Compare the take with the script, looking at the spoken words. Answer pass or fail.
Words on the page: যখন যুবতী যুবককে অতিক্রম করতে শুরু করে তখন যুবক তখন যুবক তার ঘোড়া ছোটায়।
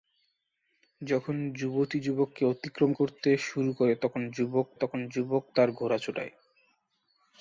pass